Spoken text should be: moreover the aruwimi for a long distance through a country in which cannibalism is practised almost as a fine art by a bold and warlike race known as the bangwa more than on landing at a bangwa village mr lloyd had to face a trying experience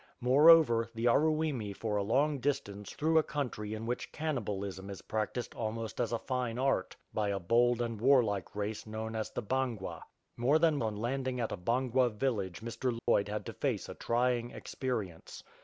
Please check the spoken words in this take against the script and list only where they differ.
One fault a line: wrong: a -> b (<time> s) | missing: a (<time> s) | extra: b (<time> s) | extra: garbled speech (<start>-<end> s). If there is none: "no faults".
no faults